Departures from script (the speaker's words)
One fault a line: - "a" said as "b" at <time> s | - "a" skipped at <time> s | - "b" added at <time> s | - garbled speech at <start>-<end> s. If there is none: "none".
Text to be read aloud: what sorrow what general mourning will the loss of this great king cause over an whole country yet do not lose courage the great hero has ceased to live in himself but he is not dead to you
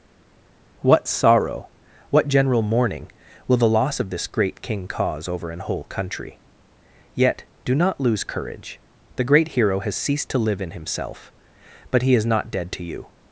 none